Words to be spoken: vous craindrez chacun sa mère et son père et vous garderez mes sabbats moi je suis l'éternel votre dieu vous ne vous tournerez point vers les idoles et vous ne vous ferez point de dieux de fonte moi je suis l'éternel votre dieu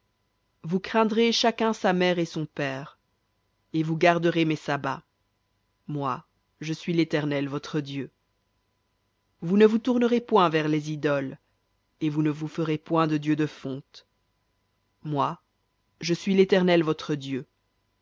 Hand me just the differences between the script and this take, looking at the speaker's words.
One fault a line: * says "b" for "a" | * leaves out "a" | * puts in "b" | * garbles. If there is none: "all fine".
all fine